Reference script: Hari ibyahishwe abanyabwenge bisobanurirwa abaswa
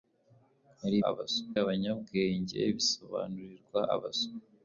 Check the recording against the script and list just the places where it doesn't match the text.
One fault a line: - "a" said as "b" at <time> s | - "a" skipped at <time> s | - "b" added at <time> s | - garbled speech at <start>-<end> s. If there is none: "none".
- "ibyahishwe" said as "abaswa" at 1.1 s